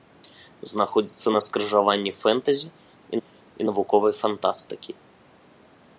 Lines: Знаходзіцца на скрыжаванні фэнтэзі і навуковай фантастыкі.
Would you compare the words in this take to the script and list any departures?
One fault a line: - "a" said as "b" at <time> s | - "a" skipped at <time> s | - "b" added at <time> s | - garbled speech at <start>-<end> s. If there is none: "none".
- "і" added at 3.2 s